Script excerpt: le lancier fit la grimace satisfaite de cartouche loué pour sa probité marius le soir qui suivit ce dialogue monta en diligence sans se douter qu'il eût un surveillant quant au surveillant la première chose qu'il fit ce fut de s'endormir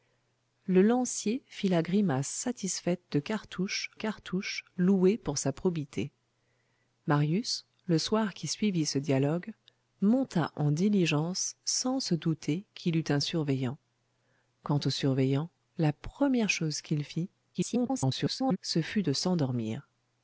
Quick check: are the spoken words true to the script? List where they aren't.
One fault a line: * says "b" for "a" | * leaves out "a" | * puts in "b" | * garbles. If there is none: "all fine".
* puts in "cartouche"
* garbles